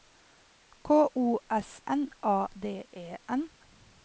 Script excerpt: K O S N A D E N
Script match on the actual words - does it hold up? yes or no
yes